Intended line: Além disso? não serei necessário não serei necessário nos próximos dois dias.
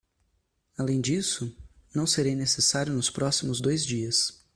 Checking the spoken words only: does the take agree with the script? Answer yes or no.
no